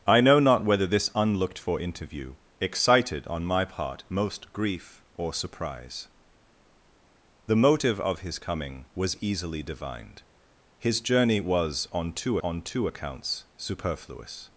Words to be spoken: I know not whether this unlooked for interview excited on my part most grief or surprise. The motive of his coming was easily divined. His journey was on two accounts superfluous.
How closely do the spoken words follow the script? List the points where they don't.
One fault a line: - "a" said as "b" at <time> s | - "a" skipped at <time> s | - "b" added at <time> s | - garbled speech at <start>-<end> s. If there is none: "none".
- "on two" added at 12.4 s